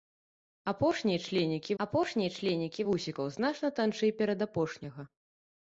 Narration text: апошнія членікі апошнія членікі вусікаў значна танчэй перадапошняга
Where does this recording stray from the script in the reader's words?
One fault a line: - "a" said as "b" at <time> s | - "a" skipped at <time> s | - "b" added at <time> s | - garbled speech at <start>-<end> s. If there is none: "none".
none